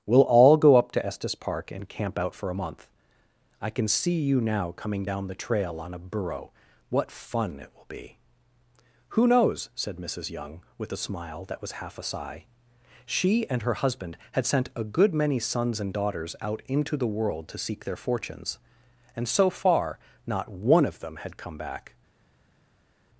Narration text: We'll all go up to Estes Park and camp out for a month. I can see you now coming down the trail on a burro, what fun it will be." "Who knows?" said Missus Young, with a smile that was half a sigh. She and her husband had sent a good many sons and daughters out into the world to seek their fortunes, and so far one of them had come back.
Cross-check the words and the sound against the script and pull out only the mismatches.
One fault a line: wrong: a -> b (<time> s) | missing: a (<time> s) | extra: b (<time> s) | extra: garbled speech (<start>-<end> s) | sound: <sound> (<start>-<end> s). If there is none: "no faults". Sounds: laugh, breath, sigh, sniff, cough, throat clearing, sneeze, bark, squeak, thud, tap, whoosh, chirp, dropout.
extra: not (20.3 s)